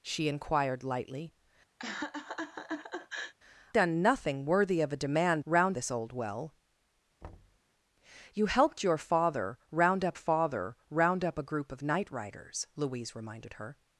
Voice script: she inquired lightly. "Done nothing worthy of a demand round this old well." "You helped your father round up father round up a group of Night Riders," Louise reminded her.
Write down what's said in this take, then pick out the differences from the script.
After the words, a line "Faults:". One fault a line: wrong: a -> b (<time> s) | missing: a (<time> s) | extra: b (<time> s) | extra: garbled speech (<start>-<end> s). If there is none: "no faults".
she inquired lightly. "Done nothing worthy of a demand round this old well." "You helped your father round up father round up a group of Night Riders," Louise reminded her.
Faults:
no faults